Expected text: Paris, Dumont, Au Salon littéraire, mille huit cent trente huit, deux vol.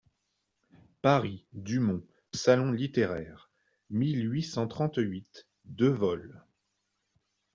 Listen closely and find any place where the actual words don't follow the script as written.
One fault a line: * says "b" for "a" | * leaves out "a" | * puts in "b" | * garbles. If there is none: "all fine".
* leaves out "Au"